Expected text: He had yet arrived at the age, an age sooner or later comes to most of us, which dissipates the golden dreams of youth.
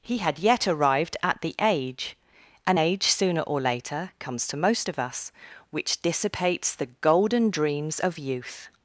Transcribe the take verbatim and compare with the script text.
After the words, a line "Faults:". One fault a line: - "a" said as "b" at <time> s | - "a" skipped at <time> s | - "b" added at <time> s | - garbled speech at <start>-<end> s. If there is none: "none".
He had yet arrived at the age, an age sooner or later comes to most of us, which dissipates the golden dreams of youth.
Faults:
none